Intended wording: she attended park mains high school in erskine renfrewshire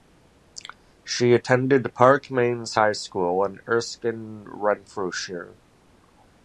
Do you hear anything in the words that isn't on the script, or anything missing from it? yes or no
no